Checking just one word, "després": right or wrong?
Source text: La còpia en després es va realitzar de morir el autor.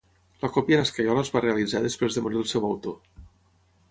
wrong